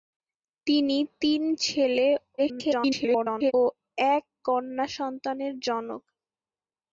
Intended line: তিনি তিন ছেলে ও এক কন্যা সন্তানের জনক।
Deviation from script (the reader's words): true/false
true